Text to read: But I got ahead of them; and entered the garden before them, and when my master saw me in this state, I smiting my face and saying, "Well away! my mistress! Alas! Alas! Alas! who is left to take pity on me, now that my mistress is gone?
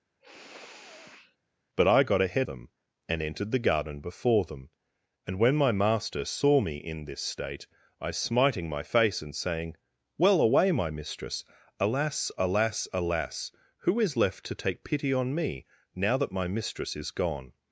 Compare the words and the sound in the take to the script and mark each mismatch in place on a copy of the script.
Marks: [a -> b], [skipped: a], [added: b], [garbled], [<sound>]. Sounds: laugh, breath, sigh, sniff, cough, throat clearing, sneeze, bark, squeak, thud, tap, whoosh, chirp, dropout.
[sniff] But I got ahead [skipped: of] them; and entered the garden before them, and when my master saw me in this state, I smiting my face and saying, "Well away! my mistress! Alas! Alas! Alas! who is left to take pity on me, now that my mistress is gone?